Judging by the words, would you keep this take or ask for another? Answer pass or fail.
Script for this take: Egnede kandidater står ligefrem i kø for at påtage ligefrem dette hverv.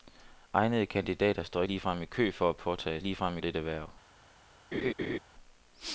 pass